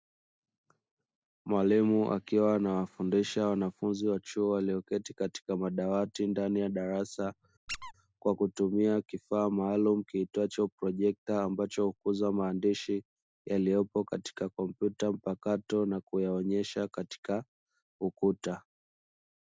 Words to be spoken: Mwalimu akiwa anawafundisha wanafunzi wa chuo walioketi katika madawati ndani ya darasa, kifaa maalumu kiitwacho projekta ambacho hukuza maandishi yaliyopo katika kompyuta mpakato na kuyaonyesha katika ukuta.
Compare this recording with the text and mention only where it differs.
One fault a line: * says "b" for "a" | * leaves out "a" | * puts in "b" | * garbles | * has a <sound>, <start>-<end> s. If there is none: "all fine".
* has a squeak, 7.7-7.9 s
* puts in "kwa kutumia"